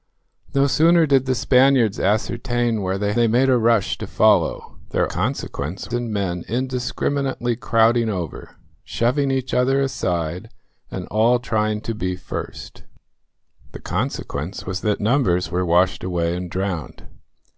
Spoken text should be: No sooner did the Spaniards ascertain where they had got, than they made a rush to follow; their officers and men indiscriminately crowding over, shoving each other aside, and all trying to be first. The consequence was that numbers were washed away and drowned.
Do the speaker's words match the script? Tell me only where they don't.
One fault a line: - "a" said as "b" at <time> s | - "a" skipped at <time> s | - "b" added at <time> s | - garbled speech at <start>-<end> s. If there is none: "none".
- "had got than" skipped at 3.1 s
- "officers" said as "consequence" at 5.1 s